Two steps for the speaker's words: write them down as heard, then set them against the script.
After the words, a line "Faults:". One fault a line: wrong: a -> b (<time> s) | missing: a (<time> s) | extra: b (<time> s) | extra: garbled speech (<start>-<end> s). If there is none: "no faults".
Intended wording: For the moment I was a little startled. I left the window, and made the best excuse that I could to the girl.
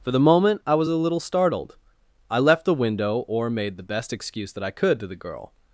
For the moment I was a little startled. I left the window, or made the best excuse that I could to the girl.
Faults:
wrong: and -> or (3.3 s)